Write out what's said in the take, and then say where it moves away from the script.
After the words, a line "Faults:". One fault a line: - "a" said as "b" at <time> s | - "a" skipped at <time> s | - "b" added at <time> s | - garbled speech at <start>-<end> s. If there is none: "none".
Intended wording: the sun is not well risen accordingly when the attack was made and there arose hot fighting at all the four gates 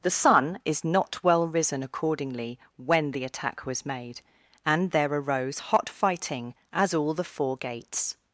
the sun is not well risen accordingly when the attack was made and there arose hot fighting at all the four gates
Faults:
none